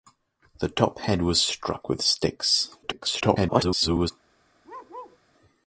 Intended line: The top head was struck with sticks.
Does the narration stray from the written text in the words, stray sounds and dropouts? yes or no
yes